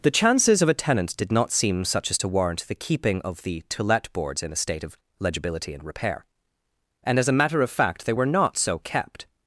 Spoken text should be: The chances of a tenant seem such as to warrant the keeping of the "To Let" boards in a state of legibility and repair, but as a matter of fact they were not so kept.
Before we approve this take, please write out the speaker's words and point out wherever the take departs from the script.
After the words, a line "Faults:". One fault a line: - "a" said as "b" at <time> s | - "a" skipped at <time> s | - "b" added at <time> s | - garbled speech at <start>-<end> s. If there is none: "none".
The chances of a tenant did not seem such as to warrant the keeping of the "To Let" boards in a state of legibility and repair, and as a matter of fact they were not so kept.
Faults:
- "did not" added at 1.1 s
- "but" said as "and" at 7.0 s